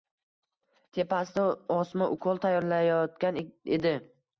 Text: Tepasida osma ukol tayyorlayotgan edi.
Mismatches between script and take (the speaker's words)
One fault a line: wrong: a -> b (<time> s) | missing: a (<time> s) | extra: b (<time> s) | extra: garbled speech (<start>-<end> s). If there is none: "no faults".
no faults